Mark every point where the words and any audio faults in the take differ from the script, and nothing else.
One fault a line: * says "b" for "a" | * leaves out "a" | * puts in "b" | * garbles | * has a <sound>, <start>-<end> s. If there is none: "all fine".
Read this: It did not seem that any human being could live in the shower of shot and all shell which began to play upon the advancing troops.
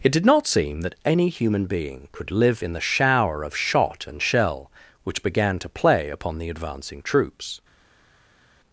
* leaves out "all"